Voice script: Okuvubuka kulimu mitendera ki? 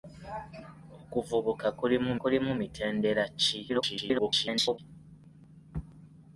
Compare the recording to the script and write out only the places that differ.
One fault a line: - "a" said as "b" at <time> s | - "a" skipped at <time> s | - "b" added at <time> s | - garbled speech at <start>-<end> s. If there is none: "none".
- "kulimu" added at 2.2 s
- garbled speech at 3.7-4.8 s